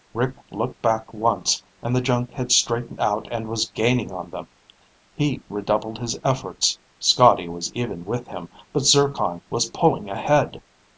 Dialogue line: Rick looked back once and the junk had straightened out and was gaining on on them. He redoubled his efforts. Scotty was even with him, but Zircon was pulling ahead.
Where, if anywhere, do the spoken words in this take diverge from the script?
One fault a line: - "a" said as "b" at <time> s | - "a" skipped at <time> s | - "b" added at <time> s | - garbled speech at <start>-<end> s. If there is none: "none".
- "on" skipped at 4.3 s